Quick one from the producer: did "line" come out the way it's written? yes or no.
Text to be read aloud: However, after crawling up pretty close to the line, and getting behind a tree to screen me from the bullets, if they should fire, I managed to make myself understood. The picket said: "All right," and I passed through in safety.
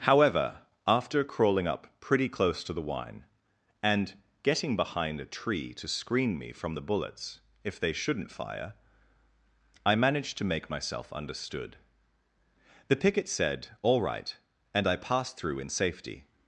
no